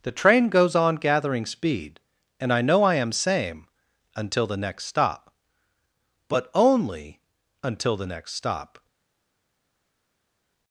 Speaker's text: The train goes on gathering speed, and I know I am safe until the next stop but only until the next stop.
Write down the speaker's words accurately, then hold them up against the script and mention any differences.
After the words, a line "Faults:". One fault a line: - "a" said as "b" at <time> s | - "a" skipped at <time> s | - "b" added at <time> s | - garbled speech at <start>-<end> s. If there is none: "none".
The train goes on gathering speed, and I know I am same until the next stop but only until the next stop.
Faults:
- "safe" said as "same" at 3.1 s